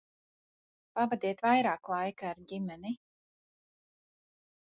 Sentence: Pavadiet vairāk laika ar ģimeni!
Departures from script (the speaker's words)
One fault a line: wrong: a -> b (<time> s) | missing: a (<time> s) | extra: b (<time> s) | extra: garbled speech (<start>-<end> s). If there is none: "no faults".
no faults